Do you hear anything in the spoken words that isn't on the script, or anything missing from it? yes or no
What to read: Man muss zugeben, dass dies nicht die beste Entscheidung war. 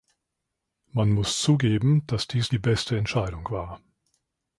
yes